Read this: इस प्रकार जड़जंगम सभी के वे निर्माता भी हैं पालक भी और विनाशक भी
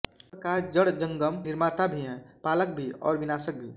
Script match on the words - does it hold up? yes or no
no